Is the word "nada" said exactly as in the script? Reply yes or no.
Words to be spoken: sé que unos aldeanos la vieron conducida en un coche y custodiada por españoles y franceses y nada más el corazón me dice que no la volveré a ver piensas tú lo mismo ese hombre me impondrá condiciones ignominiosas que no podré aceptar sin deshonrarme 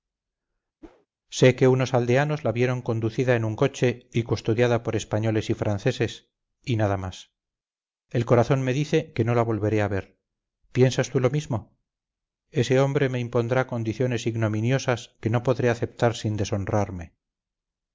yes